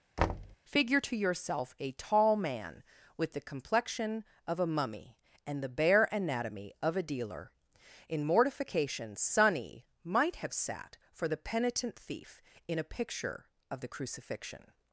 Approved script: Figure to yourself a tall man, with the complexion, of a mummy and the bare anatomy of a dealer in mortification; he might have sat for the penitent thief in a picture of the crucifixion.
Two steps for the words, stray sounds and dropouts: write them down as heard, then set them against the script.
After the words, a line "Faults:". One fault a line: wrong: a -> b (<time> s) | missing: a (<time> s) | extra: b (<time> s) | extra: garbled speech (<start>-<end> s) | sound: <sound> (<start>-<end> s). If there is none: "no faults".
Figure to yourself a tall man, with the complexion, of a mummy and the bare anatomy of a dealer in mortification; sonny might have sat for the penitent thief in a picture of the crucifixion.
Faults:
sound: thud (0.2-0.6 s)
wrong: he -> sonny (9.1 s)